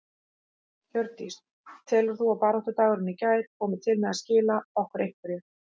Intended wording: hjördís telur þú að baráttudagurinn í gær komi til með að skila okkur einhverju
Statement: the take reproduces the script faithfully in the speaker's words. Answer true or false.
true